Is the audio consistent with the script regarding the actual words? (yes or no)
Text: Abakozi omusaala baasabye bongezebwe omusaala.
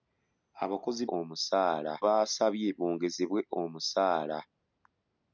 yes